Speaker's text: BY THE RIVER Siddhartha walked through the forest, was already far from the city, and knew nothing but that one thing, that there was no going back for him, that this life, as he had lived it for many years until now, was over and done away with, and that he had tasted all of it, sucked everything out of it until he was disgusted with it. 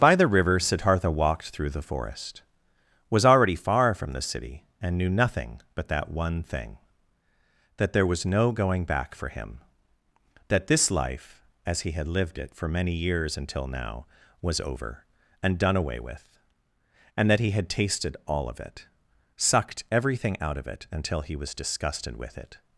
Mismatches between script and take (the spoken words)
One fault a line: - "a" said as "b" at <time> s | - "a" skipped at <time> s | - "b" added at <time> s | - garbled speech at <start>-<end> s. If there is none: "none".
none